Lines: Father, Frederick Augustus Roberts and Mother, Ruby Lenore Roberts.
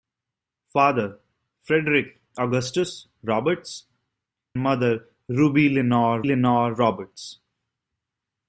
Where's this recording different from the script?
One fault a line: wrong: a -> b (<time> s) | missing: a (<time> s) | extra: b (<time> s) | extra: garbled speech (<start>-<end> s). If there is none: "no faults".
missing: and (3.9 s)
extra: Lenore (6.2 s)